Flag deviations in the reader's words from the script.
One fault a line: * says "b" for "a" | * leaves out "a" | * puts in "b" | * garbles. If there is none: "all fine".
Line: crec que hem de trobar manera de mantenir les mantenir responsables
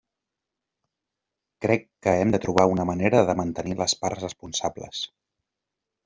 * puts in "una"
* says "parts" for "mantenir"